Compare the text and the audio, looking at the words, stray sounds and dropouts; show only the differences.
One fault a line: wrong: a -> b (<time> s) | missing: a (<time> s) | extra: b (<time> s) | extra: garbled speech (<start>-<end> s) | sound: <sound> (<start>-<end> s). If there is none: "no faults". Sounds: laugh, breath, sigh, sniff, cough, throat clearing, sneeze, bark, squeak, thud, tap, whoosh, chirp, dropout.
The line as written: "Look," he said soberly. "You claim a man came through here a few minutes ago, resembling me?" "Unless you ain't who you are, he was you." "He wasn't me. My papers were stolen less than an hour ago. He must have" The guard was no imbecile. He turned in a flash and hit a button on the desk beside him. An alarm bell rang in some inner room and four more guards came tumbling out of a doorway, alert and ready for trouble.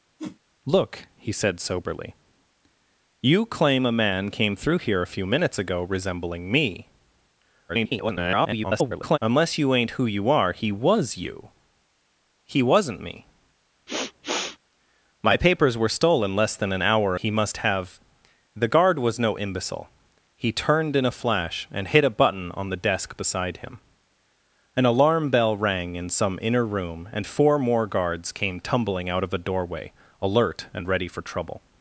sound: whoosh (0.2-0.4 s)
extra: garbled speech (7.7-9.2 s)
sound: sniff (13.9-14.6 s)
missing: ago (17.2 s)